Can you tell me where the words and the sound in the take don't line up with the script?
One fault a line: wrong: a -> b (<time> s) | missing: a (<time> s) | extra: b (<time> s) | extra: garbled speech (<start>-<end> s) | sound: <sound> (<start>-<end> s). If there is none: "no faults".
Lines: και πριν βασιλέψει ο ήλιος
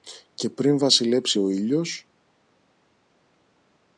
no faults